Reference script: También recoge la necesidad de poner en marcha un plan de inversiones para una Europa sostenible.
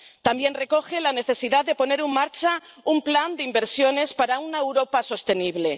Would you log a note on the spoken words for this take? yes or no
no